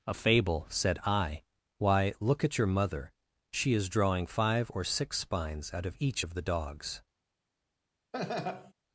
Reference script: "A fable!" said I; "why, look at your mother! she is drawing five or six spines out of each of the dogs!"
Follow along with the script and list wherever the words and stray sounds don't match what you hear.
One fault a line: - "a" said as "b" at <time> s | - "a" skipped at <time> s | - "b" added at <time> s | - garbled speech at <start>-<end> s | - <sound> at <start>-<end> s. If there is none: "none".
- laugh at 8.1-8.7 s